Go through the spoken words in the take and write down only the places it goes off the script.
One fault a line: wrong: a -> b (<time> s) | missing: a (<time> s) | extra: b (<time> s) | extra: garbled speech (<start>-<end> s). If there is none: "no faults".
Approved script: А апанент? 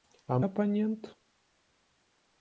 no faults